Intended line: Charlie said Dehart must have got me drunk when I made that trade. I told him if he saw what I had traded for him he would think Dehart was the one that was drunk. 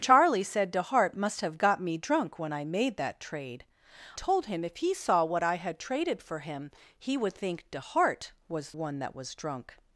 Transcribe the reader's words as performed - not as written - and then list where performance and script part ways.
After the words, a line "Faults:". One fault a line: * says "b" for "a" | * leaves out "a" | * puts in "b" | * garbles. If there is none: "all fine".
Charlie said Dehart must have got me drunk when I made that trade. told him if he saw what I had traded for him he would think Dehart was one that was drunk.
Faults:
* leaves out "I"
* leaves out "the"